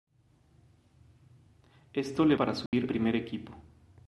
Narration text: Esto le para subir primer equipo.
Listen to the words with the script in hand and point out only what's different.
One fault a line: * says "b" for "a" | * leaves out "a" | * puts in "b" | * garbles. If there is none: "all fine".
all fine